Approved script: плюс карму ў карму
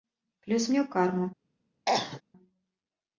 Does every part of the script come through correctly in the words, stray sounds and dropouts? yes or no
no